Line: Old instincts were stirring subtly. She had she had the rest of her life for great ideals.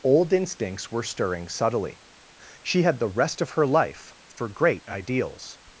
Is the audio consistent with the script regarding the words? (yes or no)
no